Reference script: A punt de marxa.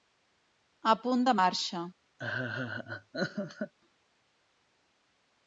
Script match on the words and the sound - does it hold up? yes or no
no